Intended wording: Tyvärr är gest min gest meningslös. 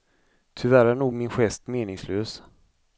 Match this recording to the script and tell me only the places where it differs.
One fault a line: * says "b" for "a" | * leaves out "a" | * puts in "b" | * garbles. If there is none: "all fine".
* says "nog" for "gest"